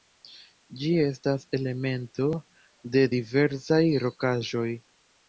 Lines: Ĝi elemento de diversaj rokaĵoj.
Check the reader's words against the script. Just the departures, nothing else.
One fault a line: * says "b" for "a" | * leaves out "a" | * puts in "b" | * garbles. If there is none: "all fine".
* puts in "estas"